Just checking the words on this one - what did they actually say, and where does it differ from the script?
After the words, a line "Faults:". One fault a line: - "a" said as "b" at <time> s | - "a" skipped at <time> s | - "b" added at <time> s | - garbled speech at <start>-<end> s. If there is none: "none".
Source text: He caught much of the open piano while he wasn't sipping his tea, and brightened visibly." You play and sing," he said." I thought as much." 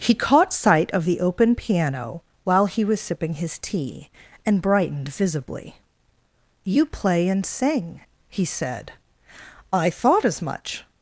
He caught sight of the open piano while he was sipping his tea, and brightened visibly." You play and sing," he said." I thought as much."
Faults:
- "much" said as "sight" at 0.5 s
- "wasn't" said as "was" at 2.8 s